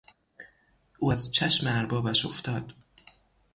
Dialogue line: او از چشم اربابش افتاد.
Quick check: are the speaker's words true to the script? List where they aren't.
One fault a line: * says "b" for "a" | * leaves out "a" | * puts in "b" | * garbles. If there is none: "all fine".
all fine